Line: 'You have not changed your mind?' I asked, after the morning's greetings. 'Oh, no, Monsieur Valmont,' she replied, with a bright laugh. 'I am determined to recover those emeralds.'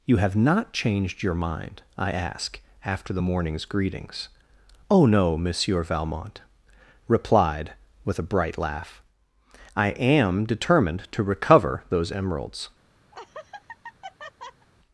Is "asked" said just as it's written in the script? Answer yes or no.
no